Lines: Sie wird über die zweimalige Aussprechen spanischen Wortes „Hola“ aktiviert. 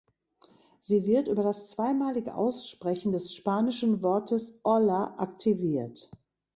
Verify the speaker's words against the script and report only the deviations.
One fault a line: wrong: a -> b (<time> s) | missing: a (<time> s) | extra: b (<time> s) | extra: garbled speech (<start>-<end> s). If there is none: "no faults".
wrong: die -> das (1.4 s)
extra: des (3.1 s)